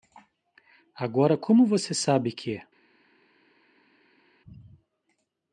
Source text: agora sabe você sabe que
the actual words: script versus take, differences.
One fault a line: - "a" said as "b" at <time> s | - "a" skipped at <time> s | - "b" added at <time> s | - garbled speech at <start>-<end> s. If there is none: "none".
- "sabe" said as "como" at 1.4 s